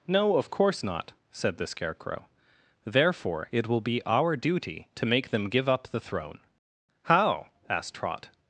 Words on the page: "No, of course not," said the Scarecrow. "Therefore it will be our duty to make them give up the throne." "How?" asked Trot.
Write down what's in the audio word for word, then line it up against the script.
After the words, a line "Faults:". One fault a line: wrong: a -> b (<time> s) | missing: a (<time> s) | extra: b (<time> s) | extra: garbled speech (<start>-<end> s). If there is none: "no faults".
"No, of course not," said the Scarecrow. "Therefore it will be our duty to make them give up the throne." "How?" asked Trot.
Faults:
no faults